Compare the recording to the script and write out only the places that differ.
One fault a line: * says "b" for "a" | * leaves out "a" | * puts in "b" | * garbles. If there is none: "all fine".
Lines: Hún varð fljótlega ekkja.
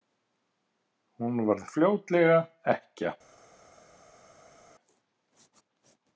all fine